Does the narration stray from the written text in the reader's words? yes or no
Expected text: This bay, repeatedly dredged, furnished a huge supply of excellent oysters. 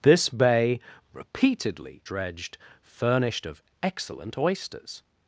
yes